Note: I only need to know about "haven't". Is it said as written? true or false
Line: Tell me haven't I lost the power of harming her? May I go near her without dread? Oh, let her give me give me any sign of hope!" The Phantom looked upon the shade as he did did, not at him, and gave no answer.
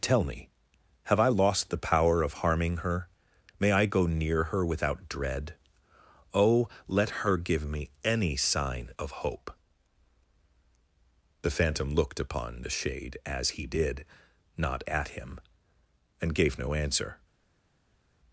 false